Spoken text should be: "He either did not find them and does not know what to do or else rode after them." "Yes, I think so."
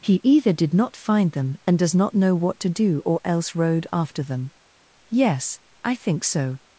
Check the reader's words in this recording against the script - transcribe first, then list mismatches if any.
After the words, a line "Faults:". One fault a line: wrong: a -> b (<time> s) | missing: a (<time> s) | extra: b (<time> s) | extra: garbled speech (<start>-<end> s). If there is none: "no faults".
"He either did not find them and does not know what to do or else rode after them." "Yes, I think so."
Faults:
no faults